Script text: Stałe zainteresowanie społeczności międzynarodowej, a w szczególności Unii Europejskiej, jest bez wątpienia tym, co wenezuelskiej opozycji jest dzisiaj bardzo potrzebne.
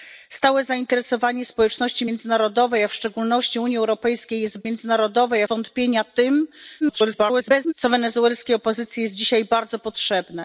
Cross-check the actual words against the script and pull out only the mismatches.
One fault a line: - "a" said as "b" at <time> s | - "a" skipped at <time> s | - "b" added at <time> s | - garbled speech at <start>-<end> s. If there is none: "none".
- "bez" said as "międzynarodowej" at 4.6 s
- garbled speech at 6.8-7.7 s